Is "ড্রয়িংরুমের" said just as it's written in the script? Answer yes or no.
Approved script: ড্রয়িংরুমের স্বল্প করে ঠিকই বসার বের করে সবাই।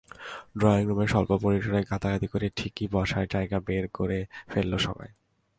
yes